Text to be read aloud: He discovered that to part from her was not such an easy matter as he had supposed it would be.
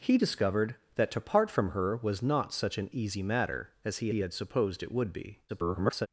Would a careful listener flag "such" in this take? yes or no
no